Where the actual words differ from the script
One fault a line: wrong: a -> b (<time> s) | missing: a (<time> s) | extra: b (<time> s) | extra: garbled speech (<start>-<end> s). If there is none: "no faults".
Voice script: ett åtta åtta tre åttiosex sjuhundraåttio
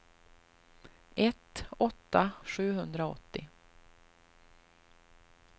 missing: åtta tre åttiosex (2.3 s)